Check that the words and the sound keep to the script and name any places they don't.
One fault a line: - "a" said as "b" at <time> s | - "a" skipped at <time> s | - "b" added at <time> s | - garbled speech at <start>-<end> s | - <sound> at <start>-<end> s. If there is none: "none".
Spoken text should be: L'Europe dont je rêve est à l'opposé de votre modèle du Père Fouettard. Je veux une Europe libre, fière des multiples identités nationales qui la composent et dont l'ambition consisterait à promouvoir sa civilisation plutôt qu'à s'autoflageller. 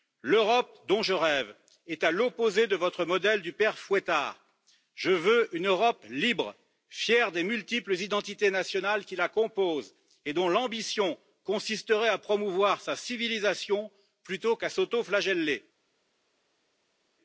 none